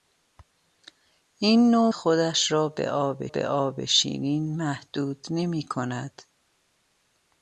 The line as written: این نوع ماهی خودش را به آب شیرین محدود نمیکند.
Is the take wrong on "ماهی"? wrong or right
wrong